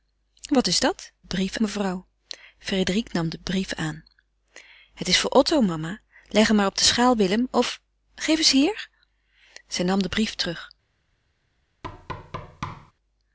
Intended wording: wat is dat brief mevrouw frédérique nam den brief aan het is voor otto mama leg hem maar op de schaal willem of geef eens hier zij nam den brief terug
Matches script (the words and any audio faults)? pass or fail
fail